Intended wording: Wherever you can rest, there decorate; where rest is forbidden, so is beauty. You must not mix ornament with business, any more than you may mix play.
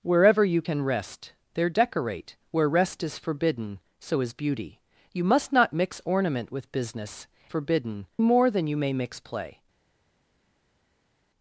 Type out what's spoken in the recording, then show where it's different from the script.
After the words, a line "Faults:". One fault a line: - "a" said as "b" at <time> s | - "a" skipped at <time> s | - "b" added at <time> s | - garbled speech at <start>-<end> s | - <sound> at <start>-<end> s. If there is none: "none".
Wherever you can rest, there decorate; where rest is forbidden, so is beauty. You must not mix ornament with business, forbidden more than you may mix play.
Faults:
- "any" said as "forbidden" at 7.5 s